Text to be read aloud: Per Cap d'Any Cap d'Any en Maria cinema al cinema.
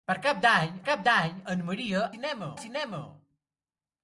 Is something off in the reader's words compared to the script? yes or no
no